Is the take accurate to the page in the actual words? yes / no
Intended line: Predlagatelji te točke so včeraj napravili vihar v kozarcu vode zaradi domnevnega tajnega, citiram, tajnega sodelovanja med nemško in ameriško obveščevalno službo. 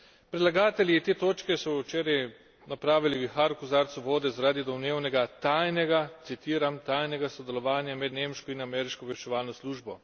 yes